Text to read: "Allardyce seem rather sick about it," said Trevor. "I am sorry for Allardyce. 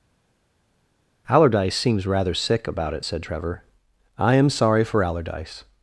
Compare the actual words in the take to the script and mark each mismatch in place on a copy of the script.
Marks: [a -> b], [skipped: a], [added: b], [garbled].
"Allardyce [seem -> seems] rather sick about it," said Trevor. "I am sorry for Allardyce.